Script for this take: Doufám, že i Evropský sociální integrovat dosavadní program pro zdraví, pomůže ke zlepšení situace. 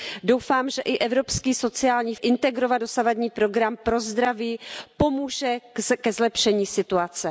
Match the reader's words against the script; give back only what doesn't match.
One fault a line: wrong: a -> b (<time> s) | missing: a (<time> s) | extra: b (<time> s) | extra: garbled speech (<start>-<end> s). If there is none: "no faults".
no faults